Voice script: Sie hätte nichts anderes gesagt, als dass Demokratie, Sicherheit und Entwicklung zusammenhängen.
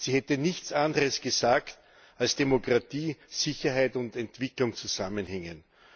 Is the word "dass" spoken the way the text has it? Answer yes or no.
no